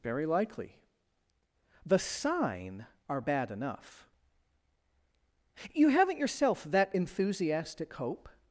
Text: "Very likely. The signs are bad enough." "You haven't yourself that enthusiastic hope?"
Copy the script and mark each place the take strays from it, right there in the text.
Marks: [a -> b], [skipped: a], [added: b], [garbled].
"Very likely. The [signs -> sign] are bad enough." "You haven't yourself that enthusiastic hope?"